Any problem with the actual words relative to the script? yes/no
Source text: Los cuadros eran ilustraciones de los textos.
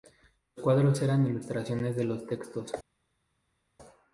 no